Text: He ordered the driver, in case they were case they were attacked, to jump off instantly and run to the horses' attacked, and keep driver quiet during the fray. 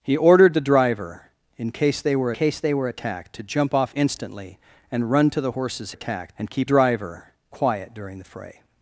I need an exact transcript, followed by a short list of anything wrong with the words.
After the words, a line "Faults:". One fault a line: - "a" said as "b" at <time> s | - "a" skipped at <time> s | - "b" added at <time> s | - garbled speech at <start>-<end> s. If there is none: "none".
He ordered the driver, in case they were case they were attacked, to jump off instantly and run to the horses' attacked, and keep driver quiet during the fray.
Faults:
none